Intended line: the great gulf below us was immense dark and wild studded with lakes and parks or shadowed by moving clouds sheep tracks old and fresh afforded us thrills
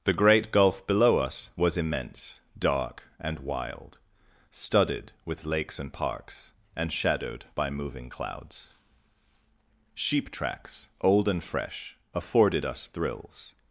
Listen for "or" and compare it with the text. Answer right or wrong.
wrong